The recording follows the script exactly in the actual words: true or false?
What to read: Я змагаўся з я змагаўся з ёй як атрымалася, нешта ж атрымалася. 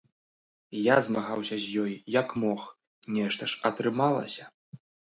false